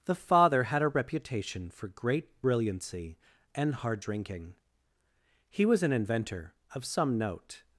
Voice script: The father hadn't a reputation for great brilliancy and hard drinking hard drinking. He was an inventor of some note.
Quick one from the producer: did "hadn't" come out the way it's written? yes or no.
no